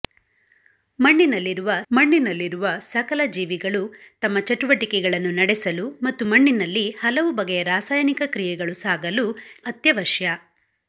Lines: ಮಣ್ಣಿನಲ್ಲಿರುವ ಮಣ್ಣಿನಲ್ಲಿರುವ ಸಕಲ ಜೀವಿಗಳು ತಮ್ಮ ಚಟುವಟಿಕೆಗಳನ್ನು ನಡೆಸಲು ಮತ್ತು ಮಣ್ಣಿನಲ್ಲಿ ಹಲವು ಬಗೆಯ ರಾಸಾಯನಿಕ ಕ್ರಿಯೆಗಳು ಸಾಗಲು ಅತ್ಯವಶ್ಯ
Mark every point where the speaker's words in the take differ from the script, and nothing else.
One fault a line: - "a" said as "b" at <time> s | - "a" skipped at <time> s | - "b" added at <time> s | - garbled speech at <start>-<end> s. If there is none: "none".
none